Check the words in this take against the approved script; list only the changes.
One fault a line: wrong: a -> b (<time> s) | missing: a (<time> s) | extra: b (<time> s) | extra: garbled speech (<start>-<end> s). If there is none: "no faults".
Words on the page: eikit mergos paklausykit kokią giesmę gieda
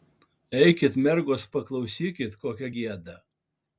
missing: giesmę (2.7 s)